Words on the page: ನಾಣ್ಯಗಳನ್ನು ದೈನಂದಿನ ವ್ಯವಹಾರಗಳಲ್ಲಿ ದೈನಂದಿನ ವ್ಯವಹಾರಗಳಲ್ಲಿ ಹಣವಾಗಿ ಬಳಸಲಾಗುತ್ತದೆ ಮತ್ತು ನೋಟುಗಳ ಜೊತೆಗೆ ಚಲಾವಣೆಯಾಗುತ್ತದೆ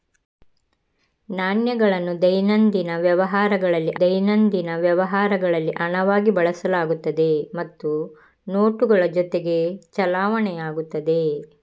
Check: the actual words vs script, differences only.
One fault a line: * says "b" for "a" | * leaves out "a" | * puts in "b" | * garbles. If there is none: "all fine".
all fine